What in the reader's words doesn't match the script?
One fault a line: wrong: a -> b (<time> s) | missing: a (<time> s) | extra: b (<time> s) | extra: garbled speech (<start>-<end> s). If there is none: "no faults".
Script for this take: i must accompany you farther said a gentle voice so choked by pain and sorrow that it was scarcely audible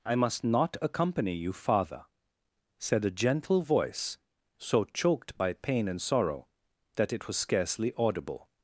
extra: not (0.4 s)